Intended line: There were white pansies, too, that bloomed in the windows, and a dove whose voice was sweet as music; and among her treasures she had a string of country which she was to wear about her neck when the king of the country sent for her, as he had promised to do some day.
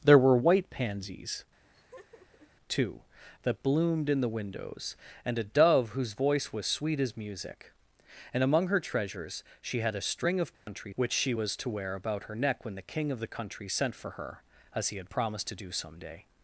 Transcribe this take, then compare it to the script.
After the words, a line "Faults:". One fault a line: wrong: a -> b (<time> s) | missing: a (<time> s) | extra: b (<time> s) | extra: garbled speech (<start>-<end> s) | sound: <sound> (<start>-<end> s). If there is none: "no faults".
There were white pansies, too, that bloomed in the windows, and a dove whose voice was sweet as music; and among her treasures she had a string of country which she was to wear about her neck when the king of the country sent for her, as he had promised to do some day.
Faults:
sound: laugh (1.6-2.5 s)
sound: dropout (10.5-10.7 s)